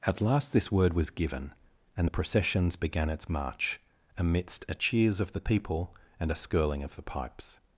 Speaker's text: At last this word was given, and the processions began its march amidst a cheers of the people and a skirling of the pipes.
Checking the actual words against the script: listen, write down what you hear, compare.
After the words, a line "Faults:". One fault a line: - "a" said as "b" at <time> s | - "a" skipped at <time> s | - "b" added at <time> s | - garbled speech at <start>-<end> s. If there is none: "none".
At last this word was given, and the processions began its march amidst a cheers of the people and a skirling of the pipes.
Faults:
none